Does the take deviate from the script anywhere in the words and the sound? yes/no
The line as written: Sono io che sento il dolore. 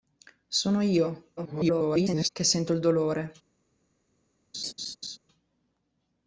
yes